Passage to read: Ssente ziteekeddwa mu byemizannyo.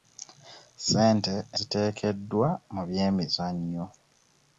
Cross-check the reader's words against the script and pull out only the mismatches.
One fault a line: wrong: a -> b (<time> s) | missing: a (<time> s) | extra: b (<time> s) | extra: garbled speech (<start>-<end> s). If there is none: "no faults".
no faults